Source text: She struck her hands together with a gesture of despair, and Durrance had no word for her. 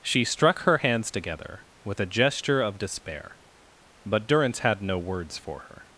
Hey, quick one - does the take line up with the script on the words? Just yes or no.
no